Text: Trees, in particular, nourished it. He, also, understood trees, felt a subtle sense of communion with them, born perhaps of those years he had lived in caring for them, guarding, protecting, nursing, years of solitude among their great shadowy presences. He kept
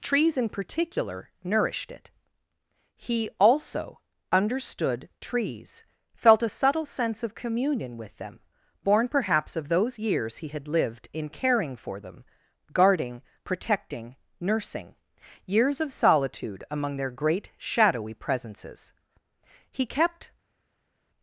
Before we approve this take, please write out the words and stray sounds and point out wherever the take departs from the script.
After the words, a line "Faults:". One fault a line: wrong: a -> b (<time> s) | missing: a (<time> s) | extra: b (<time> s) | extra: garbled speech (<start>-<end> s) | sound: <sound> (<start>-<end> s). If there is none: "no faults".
Trees, in particular, nourished it. He, also, understood trees, felt a subtle sense of communion with them, born perhaps of those years he had lived in caring for them, guarding, protecting, nursing, years of solitude among their great shadowy presences. He kept
Faults:
no faults